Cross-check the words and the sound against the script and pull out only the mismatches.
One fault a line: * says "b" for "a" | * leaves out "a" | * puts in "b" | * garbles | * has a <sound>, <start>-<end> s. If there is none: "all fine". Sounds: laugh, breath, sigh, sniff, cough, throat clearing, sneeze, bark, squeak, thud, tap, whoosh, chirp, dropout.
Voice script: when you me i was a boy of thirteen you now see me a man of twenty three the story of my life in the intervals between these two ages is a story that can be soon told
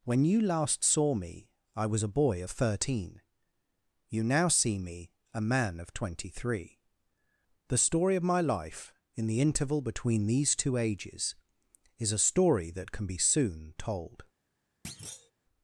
* puts in "last saw"
* says "interval" for "intervals"
* has a thud, 14.8-15.3 s